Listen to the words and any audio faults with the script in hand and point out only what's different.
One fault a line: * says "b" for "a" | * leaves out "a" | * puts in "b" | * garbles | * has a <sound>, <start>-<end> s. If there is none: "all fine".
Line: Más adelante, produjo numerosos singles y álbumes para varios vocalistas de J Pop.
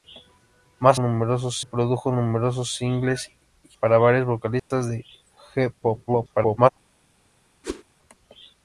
* says "numerosos" for "adelante"
* leaves out "álbumes"
* has a dropout, 4.6-4.7 s
* garbles
* has a whoosh, 7.6-7.8 s